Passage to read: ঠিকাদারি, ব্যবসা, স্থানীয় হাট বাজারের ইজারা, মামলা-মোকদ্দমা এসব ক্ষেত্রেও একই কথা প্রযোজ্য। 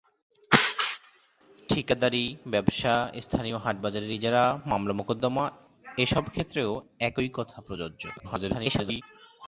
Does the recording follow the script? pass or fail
fail